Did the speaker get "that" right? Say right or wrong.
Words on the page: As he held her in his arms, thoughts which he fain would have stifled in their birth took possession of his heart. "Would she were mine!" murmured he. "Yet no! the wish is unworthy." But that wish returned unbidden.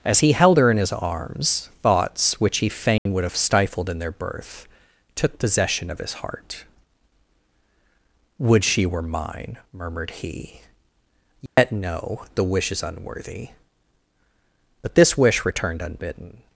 wrong